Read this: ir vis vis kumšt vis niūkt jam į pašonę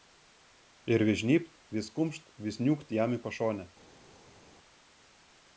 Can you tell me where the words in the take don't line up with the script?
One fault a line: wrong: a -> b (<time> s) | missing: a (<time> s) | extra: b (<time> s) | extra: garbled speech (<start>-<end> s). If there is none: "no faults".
extra: žnybt (1.2 s)